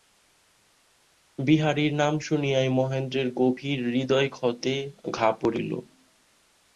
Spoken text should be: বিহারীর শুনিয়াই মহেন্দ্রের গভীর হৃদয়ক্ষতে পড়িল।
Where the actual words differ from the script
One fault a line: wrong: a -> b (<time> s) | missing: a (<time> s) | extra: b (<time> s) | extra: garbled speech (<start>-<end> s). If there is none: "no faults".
extra: নাম (1.9 s)
extra: ঘা (5.1 s)